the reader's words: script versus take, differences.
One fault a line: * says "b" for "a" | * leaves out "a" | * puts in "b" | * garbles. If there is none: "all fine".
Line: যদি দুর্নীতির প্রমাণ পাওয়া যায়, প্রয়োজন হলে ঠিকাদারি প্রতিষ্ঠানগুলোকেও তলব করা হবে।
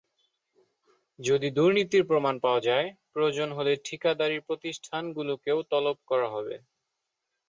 all fine